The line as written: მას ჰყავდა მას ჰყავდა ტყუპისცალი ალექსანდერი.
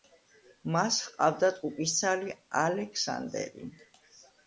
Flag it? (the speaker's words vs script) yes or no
yes